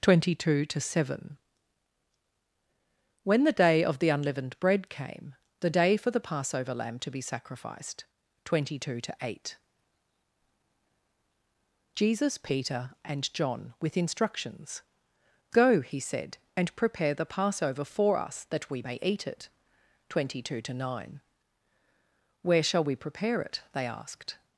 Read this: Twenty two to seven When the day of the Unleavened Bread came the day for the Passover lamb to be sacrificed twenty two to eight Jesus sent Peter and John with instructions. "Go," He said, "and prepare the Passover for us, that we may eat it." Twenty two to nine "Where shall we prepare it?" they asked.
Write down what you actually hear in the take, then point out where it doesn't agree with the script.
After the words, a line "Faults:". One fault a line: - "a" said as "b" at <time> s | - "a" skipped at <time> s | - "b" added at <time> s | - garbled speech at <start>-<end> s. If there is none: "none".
Twenty two to seven When the day of the Unleavened Bread came the day for the Passover lamb to be sacrificed twenty two to eight Jesus Peter and John with instructions. "Go," He said, "and prepare the Passover for us, that we may eat it." Twenty two to nine "Where shall we prepare it?" they asked.
Faults:
- "sent" skipped at 12.4 s